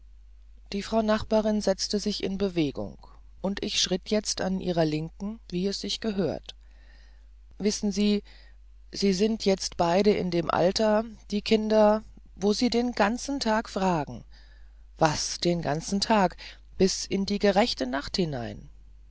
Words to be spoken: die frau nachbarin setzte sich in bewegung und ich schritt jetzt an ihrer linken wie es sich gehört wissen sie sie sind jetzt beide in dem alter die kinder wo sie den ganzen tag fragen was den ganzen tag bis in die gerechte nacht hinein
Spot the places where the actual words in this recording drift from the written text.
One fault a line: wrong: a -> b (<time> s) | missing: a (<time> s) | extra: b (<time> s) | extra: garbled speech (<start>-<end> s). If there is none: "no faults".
no faults